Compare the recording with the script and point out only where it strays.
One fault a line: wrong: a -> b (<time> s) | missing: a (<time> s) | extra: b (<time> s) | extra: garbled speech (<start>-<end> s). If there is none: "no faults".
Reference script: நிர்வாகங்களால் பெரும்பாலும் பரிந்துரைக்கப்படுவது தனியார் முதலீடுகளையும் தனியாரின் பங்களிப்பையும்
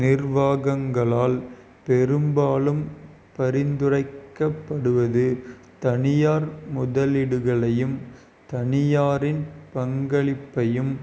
no faults